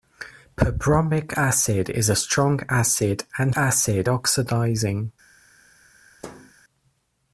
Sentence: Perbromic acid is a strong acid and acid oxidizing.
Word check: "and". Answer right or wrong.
right